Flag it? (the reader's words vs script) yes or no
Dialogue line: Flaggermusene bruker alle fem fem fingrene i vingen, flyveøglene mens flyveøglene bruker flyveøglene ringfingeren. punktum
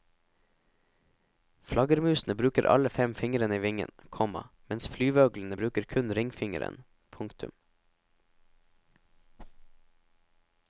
yes